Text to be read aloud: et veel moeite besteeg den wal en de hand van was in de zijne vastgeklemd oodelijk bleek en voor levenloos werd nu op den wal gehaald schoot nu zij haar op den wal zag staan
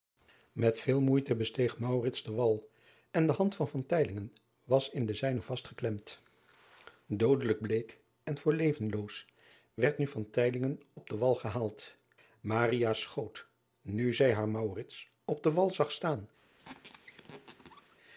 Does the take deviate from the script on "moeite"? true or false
false